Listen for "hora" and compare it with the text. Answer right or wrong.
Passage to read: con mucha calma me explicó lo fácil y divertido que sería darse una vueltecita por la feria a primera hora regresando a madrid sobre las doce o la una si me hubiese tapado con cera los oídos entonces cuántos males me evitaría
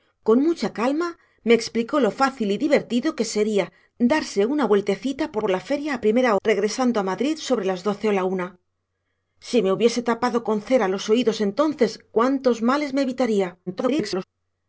wrong